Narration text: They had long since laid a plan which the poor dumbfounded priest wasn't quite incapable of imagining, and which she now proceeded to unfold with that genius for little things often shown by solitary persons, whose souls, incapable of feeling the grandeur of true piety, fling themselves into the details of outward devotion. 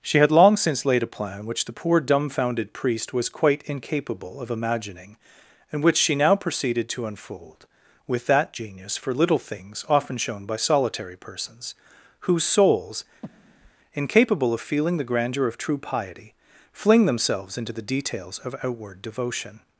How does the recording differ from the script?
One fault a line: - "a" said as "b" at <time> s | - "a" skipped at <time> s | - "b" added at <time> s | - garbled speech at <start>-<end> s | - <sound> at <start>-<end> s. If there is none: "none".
- "They" said as "She" at 0.0 s
- "wasn't" said as "was" at 3.1 s
- breath at 13.2-13.7 s